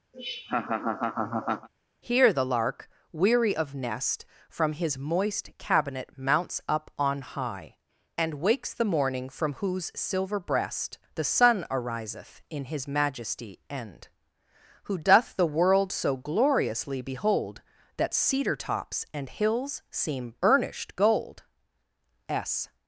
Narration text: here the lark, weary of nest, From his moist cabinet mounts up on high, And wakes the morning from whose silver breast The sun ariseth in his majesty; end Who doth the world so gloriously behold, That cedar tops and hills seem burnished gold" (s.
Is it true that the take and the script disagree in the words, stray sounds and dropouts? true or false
true